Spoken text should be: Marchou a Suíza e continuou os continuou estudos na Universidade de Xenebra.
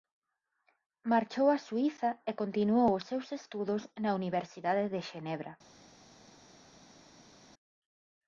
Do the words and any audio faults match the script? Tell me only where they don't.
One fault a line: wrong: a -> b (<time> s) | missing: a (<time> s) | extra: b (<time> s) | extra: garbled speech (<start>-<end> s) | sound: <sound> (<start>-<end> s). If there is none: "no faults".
wrong: continuou -> seus (3.1 s)